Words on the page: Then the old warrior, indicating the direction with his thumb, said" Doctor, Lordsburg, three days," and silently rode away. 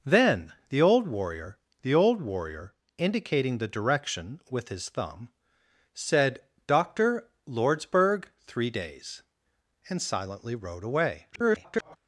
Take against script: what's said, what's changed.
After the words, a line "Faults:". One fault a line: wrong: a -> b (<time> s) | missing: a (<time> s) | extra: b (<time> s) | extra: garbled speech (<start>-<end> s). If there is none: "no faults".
Then the old warrior the old warrior, indicating the direction with his thumb, said" Doctor, Lordsburg, three days," and silently rode away. [garbled]
Faults:
extra: the old warrior (1.8 s)
extra: garbled speech (11.3-12.0 s)